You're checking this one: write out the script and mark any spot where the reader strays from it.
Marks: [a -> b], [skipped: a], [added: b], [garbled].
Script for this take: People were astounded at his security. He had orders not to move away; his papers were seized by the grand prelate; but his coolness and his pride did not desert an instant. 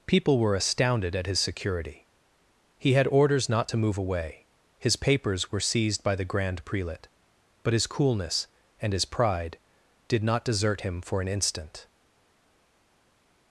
People were astounded at his security. He had orders not to move away; his papers were seized by the grand prelate; but his coolness and his pride did not desert [added: him for] an instant.